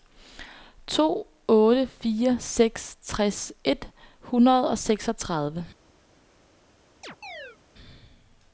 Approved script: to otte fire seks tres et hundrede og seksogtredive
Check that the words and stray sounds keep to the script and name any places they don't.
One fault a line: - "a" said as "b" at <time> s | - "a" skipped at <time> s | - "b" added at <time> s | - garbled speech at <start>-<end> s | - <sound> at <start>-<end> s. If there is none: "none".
- chirp at 7.0-7.6 s